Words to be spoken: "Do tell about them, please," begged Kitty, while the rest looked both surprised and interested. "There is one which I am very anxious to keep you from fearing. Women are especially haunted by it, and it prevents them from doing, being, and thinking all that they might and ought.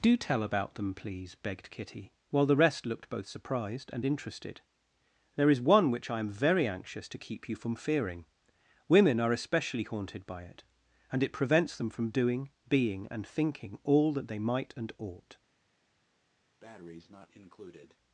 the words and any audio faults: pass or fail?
fail